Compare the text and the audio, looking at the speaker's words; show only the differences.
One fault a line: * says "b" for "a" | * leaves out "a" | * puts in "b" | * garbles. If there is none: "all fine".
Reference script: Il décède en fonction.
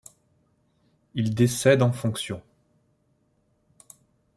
all fine